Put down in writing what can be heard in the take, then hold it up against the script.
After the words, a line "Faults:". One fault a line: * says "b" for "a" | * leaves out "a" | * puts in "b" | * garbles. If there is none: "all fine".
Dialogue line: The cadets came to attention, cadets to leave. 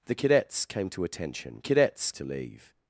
The cadets came to attention, cadets to leave.
Faults:
all fine